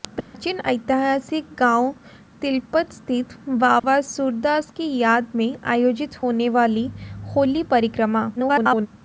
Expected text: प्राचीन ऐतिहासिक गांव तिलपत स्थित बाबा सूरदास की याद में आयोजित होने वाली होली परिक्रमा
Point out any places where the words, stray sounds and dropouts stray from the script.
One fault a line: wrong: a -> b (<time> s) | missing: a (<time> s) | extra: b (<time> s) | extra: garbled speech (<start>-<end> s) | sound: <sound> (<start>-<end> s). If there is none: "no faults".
sound: dropout (0.2-0.3 s)
sound: dropout (3.8-3.8 s)
extra: garbled speech (8.4-8.9 s)